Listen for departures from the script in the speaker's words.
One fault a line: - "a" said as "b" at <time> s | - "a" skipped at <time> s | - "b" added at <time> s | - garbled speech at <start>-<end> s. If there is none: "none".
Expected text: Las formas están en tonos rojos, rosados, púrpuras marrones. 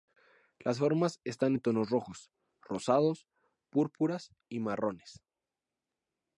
- "y" added at 4.5 s